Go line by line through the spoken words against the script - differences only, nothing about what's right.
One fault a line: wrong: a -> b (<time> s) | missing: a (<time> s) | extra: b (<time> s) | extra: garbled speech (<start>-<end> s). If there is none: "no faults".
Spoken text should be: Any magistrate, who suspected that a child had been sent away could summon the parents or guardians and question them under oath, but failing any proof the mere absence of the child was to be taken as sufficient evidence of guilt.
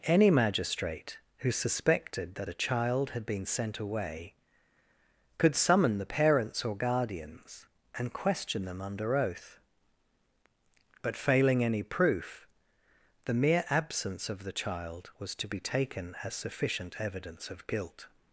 no faults